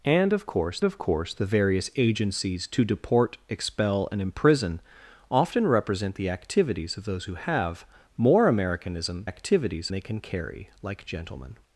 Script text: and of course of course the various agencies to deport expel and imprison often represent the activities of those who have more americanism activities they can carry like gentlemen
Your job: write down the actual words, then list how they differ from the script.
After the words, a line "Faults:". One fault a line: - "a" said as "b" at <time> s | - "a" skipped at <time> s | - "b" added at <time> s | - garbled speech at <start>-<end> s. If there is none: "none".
and of course of course the various agencies to deport expel and imprison often represent the activities of those who have more americanism activities they can carry like gentlemen
Faults:
none